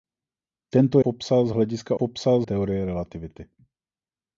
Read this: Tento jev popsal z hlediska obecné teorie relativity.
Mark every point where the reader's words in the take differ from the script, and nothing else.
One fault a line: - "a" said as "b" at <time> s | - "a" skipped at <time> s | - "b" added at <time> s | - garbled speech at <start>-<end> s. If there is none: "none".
- "jev" skipped at 1.0 s
- "obecné" said as "popsal" at 1.9 s